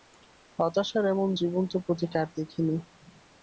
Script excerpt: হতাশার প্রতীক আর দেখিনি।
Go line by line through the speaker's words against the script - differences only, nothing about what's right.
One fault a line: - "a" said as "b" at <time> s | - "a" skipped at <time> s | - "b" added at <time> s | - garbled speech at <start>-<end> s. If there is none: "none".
- "এমন জীবন্ত" added at 1.1 s